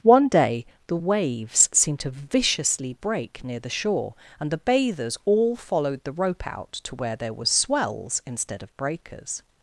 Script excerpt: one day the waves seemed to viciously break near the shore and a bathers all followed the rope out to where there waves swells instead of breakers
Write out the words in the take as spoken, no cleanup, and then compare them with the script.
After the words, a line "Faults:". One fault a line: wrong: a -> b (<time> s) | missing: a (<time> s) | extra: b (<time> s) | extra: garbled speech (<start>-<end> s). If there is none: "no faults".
one day the waves seemed to viciously break near the shore and the bathers all followed the rope out to where there were swells instead of breakers
Faults:
wrong: a -> the (4.5 s)
wrong: waves -> were (7.3 s)